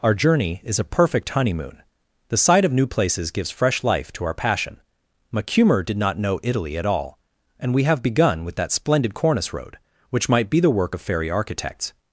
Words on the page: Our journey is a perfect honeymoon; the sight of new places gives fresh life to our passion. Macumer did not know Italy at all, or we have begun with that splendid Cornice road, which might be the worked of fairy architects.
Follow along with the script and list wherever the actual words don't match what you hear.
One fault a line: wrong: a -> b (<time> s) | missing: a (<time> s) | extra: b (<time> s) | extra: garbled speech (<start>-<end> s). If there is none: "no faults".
wrong: or -> and (7.6 s)
wrong: worked -> work (10.7 s)